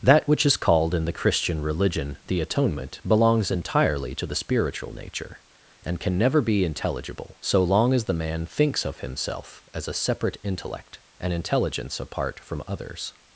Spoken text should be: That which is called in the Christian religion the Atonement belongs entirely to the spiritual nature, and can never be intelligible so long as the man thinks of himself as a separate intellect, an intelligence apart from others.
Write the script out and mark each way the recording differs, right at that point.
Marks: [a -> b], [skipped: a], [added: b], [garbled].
That which is called in the Christian religion the Atonement belongs entirely to the spiritual nature, and can never be intelligible so long as the man thinks of himself as a separate intellect, an intelligence apart from others.